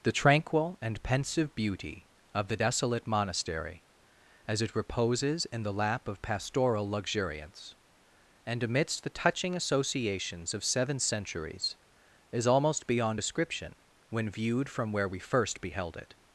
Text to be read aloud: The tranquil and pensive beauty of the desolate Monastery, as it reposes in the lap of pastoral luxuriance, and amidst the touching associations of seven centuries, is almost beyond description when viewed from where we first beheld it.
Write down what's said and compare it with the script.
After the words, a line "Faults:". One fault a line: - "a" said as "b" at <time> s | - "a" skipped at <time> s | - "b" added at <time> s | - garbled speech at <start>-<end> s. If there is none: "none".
The tranquil and pensive beauty of the desolate Monastery, as it reposes in the lap of pastoral luxuriance, and amidst the touching associations of seven centuries, is almost beyond description when viewed from where we first beheld it.
Faults:
none